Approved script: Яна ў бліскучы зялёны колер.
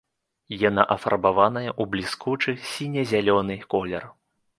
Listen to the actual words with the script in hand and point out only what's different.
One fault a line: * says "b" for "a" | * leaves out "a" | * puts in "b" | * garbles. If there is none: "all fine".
* puts in "афарбаваная"
* puts in "сіне"